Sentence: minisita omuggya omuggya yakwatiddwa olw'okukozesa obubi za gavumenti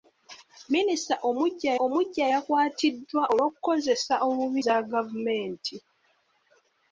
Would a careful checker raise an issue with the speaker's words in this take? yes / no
no